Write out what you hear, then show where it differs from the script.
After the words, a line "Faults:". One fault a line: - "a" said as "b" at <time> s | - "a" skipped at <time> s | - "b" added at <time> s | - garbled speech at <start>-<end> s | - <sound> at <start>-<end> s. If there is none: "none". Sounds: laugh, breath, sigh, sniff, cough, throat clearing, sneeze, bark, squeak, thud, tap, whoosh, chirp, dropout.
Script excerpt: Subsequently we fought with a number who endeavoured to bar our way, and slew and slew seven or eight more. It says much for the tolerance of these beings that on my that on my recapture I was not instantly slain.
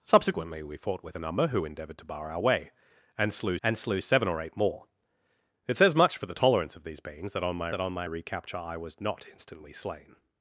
Subsequently we fought with a number who endeavoured to bar our way, and slew and slew seven or eight more. It says much for the tolerance of these beings that on my that on my recapture I was not instantly slain.
Faults:
none